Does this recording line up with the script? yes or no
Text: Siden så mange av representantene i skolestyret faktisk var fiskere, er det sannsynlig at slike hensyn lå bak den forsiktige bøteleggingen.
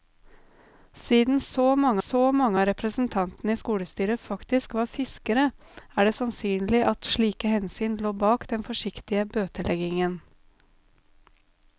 no